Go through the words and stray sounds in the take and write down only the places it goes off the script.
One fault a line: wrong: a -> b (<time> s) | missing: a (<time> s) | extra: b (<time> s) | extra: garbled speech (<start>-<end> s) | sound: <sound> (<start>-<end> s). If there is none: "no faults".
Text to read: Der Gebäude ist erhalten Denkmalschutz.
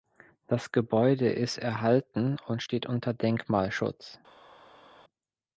wrong: Der -> Das (0.5 s)
extra: und steht unter (2.5 s)